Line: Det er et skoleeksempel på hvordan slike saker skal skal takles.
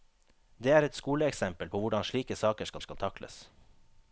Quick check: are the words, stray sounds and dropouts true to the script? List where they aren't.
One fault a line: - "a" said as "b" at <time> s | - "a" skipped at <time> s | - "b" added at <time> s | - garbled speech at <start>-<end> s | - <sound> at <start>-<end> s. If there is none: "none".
none